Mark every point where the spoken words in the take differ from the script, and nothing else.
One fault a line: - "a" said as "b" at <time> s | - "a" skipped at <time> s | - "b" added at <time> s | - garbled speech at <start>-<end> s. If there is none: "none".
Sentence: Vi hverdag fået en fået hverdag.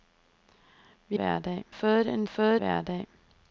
none